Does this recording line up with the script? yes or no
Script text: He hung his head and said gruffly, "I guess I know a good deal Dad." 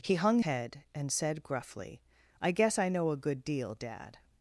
no